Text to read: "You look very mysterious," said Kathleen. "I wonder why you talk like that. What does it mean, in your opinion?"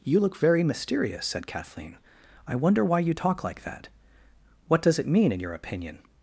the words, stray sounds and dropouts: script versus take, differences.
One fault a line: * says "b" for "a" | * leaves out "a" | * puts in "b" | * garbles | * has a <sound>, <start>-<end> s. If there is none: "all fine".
all fine